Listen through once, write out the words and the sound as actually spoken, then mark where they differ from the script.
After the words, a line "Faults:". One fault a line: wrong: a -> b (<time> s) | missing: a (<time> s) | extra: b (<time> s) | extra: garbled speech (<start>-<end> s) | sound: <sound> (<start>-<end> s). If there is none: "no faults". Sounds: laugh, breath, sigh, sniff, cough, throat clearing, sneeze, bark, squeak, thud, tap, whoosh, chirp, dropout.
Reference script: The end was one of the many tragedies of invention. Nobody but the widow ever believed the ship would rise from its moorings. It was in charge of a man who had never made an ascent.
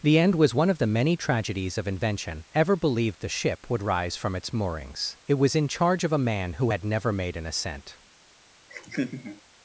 The end was one of the many tragedies of invention. ever believed the ship would rise from its moorings. It was in charge of a man who had never made an ascent.
Faults:
missing: Nobody but the widow (2.5 s)
sound: laugh (8.7-9.4 s)